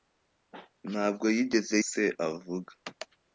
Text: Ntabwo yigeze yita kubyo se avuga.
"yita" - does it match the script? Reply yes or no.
no